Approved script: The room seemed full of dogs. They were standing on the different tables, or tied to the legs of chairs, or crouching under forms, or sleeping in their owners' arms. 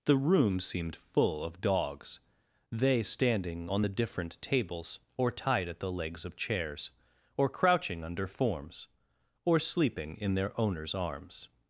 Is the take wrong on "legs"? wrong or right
right